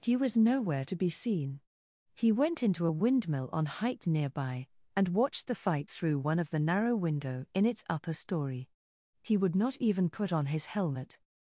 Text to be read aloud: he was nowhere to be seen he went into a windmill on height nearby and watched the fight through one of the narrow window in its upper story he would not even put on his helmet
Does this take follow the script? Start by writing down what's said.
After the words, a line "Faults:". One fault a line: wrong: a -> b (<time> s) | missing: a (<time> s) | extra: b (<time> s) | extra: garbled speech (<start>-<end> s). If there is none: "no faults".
he was nowhere to be seen he went into a windmill on height nearby and watched the fight through one of the narrow window in its upper story he would not even put on his helmet
Faults:
no faults